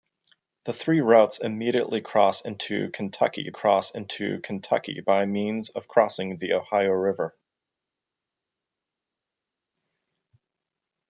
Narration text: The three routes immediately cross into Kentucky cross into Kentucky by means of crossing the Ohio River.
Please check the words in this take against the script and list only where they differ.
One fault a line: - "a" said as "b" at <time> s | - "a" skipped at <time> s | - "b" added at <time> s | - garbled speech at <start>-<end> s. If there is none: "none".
none